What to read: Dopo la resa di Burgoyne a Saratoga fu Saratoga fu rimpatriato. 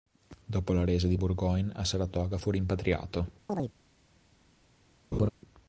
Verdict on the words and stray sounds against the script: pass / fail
fail